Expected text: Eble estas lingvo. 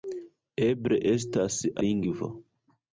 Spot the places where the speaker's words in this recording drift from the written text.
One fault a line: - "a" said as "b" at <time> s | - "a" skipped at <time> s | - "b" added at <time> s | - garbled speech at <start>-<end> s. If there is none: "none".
none